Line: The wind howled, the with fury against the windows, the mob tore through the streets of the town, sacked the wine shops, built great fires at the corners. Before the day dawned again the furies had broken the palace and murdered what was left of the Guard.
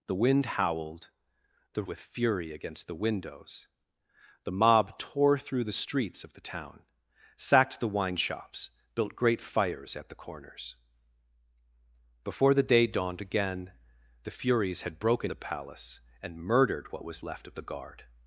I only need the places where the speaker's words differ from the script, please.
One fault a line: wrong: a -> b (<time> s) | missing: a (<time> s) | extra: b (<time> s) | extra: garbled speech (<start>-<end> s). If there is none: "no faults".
no faults